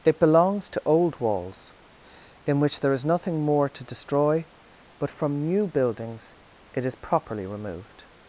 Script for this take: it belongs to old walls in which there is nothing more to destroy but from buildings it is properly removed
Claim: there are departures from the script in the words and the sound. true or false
true